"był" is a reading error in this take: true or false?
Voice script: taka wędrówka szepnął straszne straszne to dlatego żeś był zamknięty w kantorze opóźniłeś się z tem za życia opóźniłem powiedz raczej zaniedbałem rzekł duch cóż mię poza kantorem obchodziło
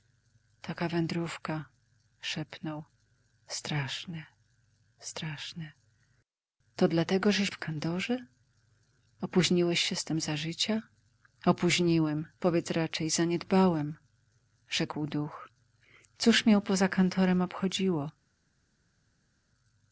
true